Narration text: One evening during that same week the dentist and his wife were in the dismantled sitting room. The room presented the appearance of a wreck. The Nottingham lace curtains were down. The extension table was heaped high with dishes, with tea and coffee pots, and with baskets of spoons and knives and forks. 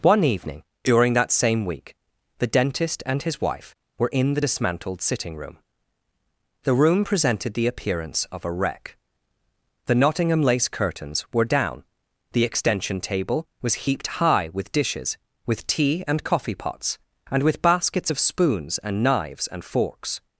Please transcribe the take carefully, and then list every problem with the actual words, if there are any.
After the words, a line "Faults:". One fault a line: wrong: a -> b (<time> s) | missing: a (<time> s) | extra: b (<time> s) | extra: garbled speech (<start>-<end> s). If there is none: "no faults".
One evening during that same week the dentist and his wife were in the dismantled sitting room. The room presented the appearance of a wreck. The Nottingham lace curtains were down. The extension table was heaped high with dishes, with tea and coffee pots, and with baskets of spoons and knives and forks.
Faults:
no faults